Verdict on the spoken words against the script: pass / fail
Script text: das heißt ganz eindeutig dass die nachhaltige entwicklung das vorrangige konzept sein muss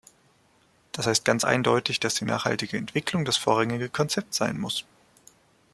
pass